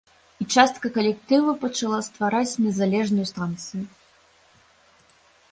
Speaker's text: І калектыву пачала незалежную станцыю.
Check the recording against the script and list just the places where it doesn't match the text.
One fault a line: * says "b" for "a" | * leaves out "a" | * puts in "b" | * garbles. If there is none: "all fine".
* puts in "частка"
* puts in "ствараць"